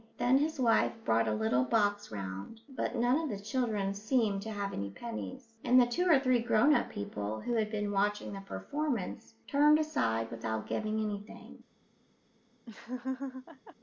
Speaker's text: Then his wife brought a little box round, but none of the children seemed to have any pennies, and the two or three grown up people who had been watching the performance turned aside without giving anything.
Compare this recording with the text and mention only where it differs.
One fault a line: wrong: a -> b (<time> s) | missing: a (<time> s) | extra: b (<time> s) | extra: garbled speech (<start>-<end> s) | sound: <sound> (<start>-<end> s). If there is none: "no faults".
sound: laugh (12.7-13.8 s)